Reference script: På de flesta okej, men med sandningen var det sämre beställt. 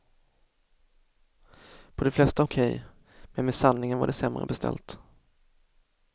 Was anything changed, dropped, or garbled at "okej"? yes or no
no